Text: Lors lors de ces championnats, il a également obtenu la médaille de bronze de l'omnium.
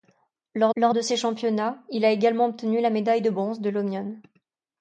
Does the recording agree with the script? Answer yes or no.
yes